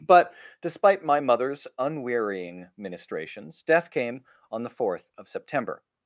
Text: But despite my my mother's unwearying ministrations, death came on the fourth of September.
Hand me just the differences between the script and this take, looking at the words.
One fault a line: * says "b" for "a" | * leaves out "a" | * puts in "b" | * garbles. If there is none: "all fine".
* leaves out "my"